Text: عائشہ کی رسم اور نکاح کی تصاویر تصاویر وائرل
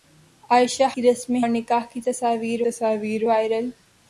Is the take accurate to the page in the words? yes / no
yes